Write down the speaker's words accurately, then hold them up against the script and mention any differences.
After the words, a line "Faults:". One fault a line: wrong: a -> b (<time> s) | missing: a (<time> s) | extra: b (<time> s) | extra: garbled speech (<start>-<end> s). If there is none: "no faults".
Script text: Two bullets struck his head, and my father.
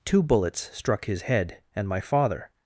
Two bullets struck his head, and my father.
Faults:
no faults